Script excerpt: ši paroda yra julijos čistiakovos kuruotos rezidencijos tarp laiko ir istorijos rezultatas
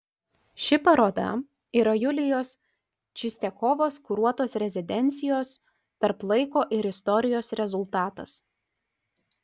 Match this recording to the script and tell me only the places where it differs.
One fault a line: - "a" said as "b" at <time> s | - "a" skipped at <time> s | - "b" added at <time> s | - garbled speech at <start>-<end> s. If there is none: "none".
none